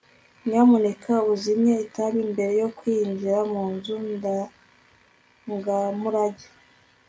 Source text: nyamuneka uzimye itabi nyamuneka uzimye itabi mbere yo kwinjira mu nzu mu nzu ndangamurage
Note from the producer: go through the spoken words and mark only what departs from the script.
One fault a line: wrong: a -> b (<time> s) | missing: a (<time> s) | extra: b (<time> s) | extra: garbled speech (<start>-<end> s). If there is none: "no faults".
missing: nyamuneka uzimye itabi (2.2 s)
missing: mu nzu (4.0 s)